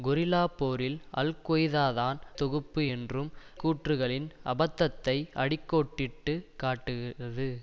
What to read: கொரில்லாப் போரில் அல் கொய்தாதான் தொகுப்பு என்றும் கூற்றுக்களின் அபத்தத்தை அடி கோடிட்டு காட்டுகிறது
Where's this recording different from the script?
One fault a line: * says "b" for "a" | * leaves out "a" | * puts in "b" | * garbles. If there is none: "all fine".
all fine